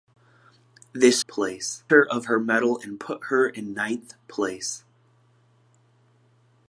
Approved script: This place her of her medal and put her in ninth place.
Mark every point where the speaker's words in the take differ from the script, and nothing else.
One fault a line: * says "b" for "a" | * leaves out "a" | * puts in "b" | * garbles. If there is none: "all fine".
all fine